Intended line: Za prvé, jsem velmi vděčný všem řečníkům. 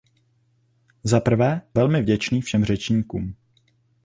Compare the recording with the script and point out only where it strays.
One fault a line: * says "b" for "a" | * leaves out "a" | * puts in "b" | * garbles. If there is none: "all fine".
* leaves out "jsem"